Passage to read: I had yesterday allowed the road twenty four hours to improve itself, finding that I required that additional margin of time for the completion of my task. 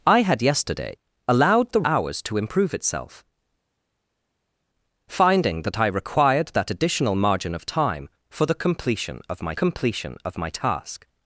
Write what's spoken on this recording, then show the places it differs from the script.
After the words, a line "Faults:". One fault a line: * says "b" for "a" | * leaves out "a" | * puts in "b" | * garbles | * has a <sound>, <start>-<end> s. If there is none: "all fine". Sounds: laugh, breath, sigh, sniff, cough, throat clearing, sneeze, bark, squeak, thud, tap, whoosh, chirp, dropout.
I had yesterday allowed the hours to improve itself, finding that I required that additional margin of time for the completion of my completion of my task.
Faults:
* leaves out "road twenty four"
* puts in "completion of my"